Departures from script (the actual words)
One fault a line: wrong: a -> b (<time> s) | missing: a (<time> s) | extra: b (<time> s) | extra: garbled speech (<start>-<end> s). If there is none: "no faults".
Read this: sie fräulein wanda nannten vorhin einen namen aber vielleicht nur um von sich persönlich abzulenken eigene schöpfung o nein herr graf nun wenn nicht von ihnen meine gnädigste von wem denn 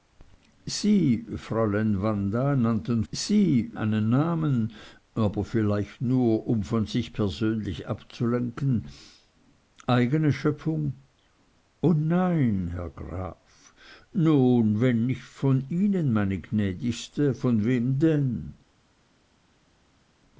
wrong: vorhin -> sie (3.1 s)